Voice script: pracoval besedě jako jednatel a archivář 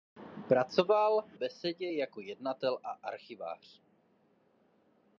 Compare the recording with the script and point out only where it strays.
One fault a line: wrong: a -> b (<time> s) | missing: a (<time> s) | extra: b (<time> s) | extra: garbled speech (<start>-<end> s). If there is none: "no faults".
no faults